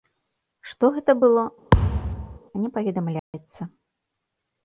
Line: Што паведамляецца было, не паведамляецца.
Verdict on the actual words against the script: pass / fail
fail